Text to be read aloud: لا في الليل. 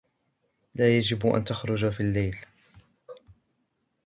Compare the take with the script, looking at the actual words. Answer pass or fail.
fail